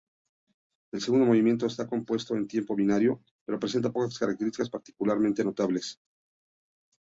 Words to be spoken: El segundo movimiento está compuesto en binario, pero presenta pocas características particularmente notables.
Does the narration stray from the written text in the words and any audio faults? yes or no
yes